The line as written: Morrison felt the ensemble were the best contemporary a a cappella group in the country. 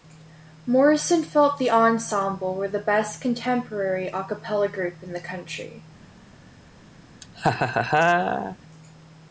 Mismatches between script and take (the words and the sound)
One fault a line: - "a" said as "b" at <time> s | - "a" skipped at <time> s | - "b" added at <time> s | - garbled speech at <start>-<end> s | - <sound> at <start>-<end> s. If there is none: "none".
- "a" skipped at 4.2 s
- laugh at 7.2-8.6 s